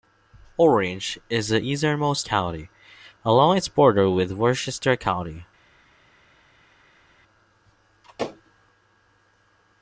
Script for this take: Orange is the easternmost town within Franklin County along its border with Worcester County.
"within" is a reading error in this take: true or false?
true